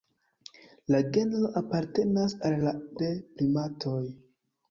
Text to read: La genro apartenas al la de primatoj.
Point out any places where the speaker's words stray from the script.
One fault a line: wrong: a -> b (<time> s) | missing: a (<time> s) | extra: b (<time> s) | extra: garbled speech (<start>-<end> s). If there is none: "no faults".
no faults